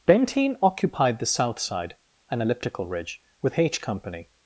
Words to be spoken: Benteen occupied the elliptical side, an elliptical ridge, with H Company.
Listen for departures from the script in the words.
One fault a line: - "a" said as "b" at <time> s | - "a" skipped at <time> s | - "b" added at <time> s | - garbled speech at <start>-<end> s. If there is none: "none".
- "elliptical" said as "south" at 1.3 s